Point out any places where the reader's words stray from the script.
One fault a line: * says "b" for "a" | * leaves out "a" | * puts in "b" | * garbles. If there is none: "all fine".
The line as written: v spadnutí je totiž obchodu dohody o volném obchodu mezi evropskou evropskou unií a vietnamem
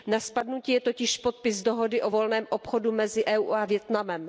* says "na" for "v"
* says "podpis" for "obchodu"
* leaves out "evropskou"